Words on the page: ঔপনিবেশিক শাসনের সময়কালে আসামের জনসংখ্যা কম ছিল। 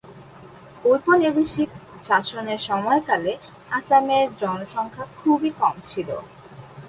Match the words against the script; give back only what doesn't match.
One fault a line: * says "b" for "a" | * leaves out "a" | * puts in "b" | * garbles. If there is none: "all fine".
* puts in "খুবই"